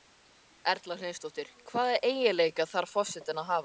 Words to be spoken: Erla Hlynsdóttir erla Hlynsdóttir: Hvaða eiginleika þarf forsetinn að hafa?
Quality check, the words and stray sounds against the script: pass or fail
fail